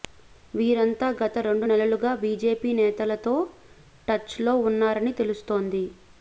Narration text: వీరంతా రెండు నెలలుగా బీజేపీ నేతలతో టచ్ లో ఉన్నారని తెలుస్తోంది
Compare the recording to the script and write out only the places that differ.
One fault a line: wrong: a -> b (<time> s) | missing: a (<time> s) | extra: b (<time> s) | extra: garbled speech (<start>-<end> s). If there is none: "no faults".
extra: గత (1.2 s)